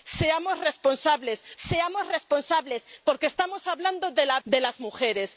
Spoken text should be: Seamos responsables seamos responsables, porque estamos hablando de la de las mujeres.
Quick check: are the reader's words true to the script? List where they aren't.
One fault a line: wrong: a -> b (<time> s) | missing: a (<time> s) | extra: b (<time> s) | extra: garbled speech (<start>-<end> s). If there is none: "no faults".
no faults